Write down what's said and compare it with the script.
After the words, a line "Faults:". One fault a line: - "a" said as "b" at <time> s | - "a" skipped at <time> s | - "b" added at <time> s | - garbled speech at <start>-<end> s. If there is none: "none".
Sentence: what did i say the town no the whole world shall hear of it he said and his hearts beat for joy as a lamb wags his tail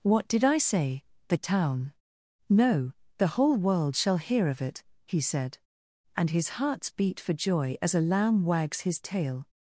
what did i say the town no the whole world shall hear of it he said and his hearts beat for joy as a lamb wags his tail
Faults:
none